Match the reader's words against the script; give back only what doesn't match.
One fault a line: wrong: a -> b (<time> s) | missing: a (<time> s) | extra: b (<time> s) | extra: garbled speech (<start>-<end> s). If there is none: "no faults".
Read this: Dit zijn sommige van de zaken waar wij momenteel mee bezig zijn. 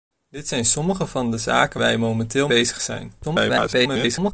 missing: waar (1.8 s)
missing: mee (2.5 s)
extra: garbled speech (3.2-4.3 s)